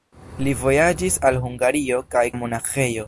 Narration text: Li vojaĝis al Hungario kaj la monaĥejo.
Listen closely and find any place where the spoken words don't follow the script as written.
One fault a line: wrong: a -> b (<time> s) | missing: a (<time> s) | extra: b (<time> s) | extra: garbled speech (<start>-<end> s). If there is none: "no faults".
no faults